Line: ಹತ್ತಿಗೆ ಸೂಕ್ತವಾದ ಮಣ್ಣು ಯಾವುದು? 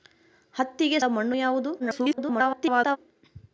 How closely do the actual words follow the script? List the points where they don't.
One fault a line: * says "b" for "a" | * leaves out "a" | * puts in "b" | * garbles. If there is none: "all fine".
* leaves out "ಸೂಕ್ತವಾದ"
* garbles